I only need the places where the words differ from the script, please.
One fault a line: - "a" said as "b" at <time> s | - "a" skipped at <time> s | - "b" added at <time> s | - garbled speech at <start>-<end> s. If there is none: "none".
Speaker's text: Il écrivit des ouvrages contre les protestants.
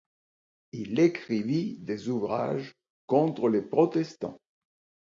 none